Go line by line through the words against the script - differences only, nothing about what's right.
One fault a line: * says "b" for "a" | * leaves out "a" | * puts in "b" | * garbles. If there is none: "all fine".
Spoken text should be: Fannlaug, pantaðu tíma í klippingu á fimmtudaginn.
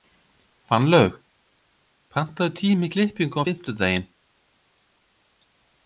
all fine